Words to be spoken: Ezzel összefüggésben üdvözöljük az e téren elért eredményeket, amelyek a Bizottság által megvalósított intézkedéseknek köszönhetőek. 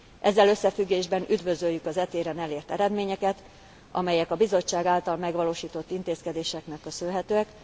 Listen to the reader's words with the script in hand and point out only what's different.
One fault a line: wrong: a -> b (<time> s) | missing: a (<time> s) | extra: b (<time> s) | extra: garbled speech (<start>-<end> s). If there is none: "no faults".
no faults